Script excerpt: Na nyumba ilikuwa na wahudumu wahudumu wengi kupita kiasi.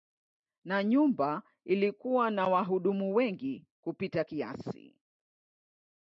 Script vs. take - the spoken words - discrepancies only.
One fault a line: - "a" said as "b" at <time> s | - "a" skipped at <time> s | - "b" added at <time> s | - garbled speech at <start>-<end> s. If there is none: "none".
- "wahudumu" skipped at 3.1 s